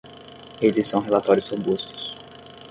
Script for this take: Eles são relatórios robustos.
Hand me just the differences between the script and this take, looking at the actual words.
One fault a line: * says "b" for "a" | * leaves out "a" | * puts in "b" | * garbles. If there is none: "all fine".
all fine